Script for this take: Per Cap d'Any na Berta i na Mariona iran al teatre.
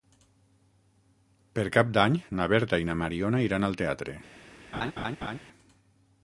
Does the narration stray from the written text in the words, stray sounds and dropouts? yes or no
yes